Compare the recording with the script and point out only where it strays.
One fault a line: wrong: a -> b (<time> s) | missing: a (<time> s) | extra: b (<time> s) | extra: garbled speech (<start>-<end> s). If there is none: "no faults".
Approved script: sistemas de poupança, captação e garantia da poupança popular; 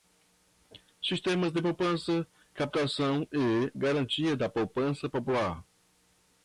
no faults